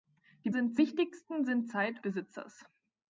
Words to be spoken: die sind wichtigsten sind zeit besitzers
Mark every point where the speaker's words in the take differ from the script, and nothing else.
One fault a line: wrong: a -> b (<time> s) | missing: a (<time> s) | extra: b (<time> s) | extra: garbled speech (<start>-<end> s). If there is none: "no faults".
no faults